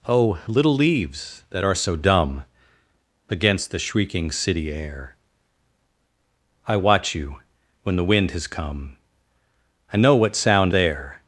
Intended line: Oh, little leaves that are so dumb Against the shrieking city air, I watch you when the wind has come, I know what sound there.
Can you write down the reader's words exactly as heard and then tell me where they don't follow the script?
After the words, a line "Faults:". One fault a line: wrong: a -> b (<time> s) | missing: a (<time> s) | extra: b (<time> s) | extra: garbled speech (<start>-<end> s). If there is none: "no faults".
Oh, little leaves that are so dumb Against the shrieking city air, I watch you when the wind has come, I know what sound there.
Faults:
no faults